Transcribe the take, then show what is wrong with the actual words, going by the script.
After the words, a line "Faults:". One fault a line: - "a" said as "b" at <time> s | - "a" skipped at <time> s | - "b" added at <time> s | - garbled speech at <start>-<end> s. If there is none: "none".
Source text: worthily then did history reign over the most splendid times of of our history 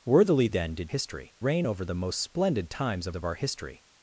worthily then did history reign over the most splendid times of of our history
Faults:
none